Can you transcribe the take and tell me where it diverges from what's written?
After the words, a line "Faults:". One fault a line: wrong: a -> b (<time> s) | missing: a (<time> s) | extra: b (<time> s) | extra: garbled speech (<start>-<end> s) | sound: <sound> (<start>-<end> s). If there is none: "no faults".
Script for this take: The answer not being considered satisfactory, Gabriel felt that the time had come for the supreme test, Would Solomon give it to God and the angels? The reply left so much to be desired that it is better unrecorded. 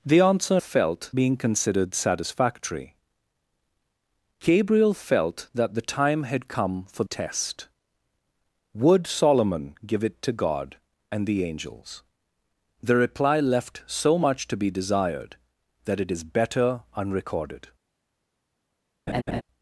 The answer felt being considered satisfactory, Gabriel felt that the time had come for test, Would Solomon give it to God and the angels? The reply left so much to be desired that it is better unrecorded.
Faults:
wrong: not -> felt (0.6 s)
missing: the supreme (7.0 s)
sound: laugh (19.1-19.4 s)